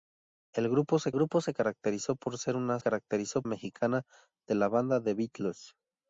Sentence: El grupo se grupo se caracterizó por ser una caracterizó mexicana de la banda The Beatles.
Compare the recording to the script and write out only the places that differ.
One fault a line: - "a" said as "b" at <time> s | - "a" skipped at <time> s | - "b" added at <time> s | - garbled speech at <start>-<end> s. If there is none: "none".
none